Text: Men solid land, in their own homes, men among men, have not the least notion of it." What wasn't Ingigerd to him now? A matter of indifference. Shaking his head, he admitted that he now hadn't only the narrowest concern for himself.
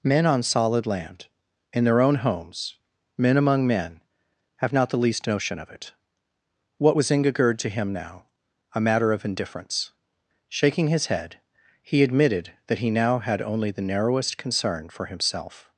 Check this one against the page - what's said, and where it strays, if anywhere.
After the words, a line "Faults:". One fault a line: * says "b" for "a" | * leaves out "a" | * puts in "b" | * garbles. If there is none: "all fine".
Men on solid land, in their own homes, men among men, have not the least notion of it." What was Ingigerd to him now? A matter of indifference. Shaking his head, he admitted that he now had only the narrowest concern for himself.
Faults:
* puts in "on"
* says "was" for "wasn't"
* says "had" for "hadn't"